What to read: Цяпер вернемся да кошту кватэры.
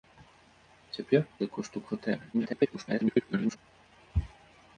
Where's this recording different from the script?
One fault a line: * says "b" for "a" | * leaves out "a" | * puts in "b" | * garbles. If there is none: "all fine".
* leaves out "вернемся"
* garbles